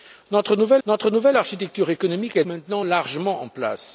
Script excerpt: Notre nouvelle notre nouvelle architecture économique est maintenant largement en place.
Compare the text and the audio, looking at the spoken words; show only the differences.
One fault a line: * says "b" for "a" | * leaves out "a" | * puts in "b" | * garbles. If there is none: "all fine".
all fine